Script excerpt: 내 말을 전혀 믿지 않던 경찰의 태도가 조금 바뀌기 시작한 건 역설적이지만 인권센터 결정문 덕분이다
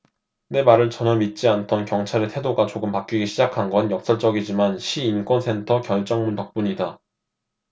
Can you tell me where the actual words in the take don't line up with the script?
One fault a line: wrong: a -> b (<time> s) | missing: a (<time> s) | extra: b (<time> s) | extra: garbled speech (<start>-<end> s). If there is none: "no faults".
extra: 시 (4.8 s)